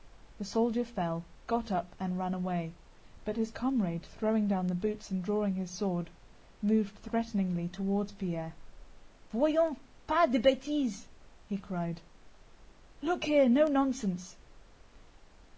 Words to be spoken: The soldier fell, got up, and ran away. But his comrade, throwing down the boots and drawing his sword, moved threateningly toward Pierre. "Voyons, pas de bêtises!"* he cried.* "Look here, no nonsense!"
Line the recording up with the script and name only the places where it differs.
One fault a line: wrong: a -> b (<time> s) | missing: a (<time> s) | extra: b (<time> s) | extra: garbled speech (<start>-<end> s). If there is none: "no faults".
no faults